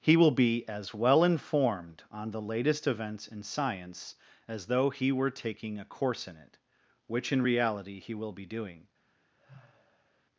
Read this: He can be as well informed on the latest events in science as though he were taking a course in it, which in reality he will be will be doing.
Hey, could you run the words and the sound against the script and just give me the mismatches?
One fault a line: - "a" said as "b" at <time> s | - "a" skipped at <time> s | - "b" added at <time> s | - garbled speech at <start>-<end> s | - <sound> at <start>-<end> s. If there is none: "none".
- "can" said as "will" at 0.2 s
- "will be" skipped at 8.5 s
- sigh at 9.4-10.2 s